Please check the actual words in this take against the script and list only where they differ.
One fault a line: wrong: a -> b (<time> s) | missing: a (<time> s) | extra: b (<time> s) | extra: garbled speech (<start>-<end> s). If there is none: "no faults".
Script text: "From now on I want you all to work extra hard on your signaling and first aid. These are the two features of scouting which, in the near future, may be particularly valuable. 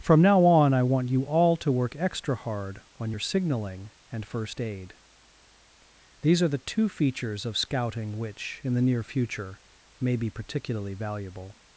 no faults